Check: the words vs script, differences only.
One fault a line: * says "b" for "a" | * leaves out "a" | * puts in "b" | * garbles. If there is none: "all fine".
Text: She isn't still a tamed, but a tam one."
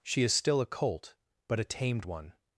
* says "is" for "isn't"
* says "colt" for "tamed"
* says "tamed" for "tam"